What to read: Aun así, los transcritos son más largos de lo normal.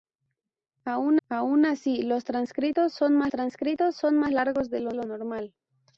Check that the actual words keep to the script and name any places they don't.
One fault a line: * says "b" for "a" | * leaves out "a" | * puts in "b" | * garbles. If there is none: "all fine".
* puts in "aun"
* puts in "transcritos son más"
* puts in "lo"